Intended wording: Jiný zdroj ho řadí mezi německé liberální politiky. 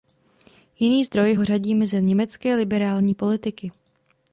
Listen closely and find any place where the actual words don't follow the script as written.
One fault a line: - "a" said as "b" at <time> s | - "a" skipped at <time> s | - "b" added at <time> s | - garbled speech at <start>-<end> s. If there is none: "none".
none